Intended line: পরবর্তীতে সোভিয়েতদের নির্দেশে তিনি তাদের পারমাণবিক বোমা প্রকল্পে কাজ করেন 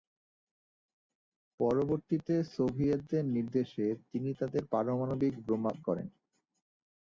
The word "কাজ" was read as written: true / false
false